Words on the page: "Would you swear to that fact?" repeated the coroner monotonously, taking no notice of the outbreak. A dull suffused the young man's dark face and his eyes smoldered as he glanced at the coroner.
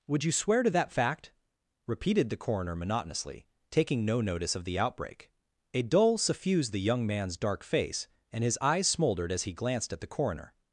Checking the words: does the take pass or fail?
pass